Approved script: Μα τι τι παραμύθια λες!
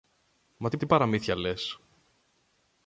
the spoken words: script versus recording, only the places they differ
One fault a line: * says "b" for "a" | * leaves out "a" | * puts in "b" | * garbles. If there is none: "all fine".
all fine